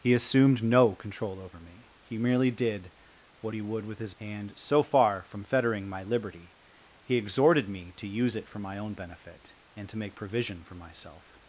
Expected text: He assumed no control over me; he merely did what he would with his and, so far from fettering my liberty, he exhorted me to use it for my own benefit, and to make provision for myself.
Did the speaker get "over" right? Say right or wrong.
right